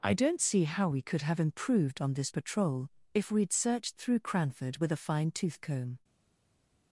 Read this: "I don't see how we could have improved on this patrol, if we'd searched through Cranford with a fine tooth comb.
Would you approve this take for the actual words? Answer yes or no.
yes